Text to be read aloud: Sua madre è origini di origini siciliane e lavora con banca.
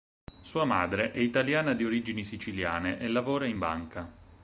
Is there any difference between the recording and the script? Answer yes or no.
yes